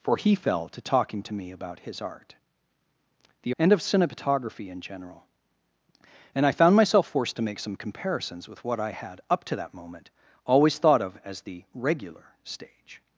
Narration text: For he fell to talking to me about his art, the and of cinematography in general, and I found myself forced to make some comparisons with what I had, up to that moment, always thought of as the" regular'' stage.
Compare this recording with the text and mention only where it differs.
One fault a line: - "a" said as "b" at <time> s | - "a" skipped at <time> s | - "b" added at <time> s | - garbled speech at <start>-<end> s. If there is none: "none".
none